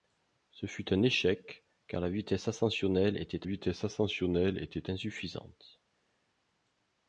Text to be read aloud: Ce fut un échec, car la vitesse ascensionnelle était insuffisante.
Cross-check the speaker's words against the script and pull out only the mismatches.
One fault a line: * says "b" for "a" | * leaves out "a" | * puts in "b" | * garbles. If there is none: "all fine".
* puts in "vitesse ascensionnelle était"